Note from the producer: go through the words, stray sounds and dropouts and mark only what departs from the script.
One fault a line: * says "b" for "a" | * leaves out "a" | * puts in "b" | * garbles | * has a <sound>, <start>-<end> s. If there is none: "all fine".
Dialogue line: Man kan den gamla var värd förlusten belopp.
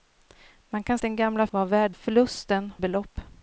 all fine